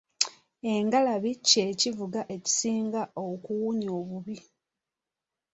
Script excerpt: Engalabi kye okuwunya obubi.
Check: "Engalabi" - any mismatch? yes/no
no